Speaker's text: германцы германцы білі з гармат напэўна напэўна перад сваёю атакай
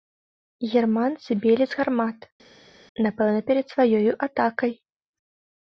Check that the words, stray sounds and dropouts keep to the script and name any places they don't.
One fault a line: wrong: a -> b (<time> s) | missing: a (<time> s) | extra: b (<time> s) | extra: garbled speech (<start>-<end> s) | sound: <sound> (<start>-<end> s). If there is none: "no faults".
missing: германцы (1.3 s)
missing: напэўна (3.4 s)